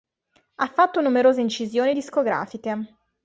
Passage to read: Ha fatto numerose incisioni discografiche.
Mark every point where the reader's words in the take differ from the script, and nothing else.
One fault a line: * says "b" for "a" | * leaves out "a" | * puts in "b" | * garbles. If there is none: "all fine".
all fine